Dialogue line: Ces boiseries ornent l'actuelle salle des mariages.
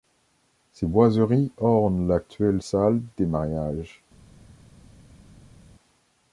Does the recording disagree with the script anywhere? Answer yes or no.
no